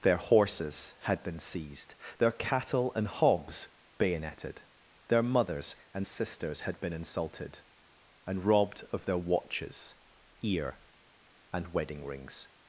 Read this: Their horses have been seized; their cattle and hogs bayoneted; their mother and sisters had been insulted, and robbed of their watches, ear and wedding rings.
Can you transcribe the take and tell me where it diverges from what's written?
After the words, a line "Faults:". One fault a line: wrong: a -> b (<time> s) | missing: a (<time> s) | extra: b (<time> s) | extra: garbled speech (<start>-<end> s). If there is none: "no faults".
Their horses had been seized; their cattle and hogs bayoneted; their mothers and sisters had been insulted, and robbed of their watches, ear and wedding rings.
Faults:
wrong: have -> had (1.0 s)
wrong: mother -> mothers (5.2 s)